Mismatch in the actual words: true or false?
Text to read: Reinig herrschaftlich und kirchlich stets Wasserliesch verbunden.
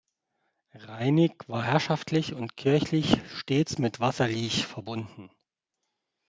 true